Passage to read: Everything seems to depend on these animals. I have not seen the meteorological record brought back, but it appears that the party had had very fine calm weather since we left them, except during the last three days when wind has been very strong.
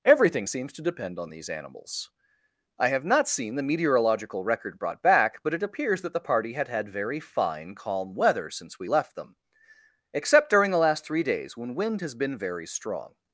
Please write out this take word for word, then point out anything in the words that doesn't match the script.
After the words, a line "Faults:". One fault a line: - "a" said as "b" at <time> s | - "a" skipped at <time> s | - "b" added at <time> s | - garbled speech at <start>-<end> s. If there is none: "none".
Everything seems to depend on these animals. I have not seen the meteorological record brought back, but it appears that the party had had very fine calm weather since we left them, except during the last three days when wind has been very strong.
Faults:
none